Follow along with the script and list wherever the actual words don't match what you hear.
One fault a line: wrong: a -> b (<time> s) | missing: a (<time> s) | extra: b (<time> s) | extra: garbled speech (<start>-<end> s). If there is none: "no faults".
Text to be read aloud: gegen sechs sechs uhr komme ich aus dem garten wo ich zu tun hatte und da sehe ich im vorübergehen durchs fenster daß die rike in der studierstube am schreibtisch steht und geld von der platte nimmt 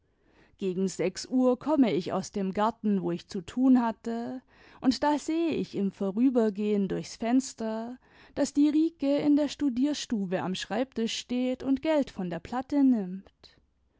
missing: sechs (1.3 s)